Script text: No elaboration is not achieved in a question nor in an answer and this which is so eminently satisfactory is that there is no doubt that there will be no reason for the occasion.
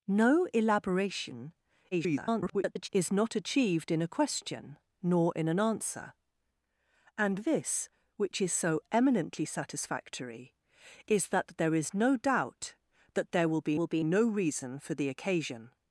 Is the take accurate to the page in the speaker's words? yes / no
no